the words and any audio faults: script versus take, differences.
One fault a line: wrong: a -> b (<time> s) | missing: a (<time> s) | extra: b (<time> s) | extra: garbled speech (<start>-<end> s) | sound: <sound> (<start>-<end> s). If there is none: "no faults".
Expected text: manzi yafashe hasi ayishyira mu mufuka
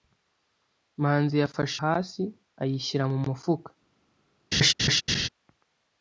sound: laugh (4.5-5.3 s)